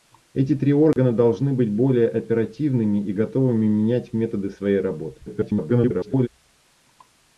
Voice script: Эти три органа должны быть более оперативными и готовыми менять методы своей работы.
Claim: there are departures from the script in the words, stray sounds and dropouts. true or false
true